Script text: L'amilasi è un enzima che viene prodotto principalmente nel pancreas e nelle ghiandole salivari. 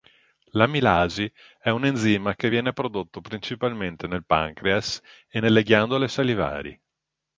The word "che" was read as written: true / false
true